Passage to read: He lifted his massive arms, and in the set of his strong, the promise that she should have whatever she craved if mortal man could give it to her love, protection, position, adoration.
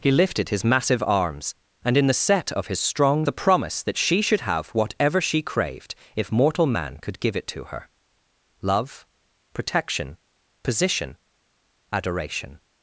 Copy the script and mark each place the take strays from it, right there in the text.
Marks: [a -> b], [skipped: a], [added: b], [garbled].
He lifted his massive arms, and in the set of his strong, the promise that she should have whatever she craved if mortal man could give it to her love, protection, position, adoration.